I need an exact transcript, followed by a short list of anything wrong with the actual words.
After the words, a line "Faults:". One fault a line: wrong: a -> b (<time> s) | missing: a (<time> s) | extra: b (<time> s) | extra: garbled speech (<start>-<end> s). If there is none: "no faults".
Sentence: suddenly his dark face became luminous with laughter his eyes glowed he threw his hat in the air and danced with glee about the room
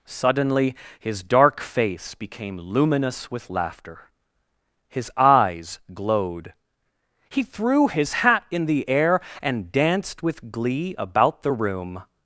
suddenly his dark face became luminous with laughter his eyes glowed he threw his hat in the air and danced with glee about the room
Faults:
no faults